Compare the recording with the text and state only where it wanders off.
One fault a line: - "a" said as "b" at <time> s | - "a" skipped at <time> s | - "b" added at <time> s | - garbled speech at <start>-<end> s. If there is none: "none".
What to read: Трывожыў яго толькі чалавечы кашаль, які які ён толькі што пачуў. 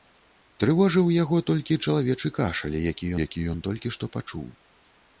none